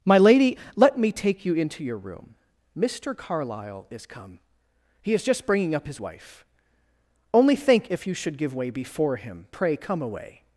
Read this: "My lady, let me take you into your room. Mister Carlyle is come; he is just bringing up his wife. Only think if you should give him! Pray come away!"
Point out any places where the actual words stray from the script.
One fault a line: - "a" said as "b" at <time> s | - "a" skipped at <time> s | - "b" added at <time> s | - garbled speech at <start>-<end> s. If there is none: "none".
- "way before" added at 8.5 s